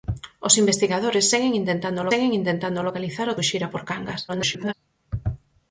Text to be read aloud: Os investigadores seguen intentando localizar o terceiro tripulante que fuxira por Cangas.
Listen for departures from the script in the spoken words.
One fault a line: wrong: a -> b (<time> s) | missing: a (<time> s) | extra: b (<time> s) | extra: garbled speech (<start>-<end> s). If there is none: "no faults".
extra: seguen intentando (2.1 s)
missing: terceiro tripulante que (3.4 s)
extra: garbled speech (4.3-4.7 s)